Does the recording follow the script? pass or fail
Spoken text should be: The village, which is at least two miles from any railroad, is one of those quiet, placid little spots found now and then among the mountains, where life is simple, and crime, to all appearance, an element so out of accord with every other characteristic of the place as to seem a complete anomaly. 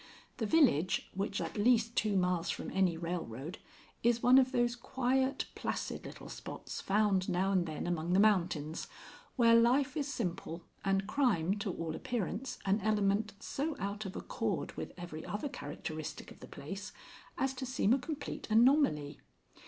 fail